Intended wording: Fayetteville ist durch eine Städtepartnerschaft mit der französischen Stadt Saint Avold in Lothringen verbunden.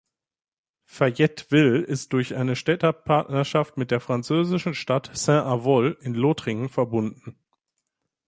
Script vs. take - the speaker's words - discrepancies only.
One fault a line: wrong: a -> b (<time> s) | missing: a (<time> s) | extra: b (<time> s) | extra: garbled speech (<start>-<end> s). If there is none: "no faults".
no faults